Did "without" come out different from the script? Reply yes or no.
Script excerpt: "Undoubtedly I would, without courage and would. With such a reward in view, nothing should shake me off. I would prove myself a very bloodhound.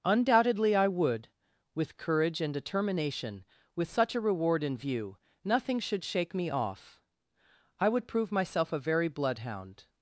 yes